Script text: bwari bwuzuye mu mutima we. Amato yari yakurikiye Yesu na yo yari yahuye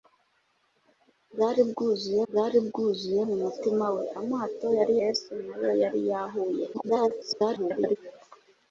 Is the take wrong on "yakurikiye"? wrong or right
wrong